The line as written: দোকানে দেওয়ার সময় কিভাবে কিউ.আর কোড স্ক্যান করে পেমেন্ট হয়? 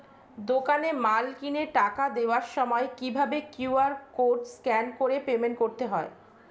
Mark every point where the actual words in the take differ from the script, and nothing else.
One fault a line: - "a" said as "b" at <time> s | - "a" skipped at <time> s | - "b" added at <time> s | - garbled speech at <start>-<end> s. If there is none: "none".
- "মাল কিনে টাকা" added at 1.1 s
- "করতে" added at 5.6 s